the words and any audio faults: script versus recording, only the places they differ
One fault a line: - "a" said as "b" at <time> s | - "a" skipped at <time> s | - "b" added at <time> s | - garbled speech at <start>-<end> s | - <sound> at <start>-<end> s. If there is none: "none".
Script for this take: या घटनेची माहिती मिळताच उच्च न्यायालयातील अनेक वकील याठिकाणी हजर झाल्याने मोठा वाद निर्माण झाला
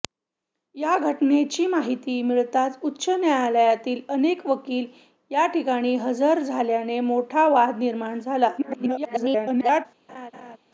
- garbled speech at 8.6-9.9 s
- laugh at 10.1-10.6 s